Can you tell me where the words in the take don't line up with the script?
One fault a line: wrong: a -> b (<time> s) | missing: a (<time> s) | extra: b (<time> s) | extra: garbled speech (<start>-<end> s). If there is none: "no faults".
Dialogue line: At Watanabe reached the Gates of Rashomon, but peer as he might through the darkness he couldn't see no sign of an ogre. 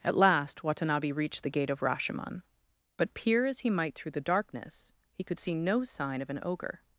extra: last (0.1 s)
wrong: Gates -> Gate (1.5 s)
wrong: couldn't -> could (5.2 s)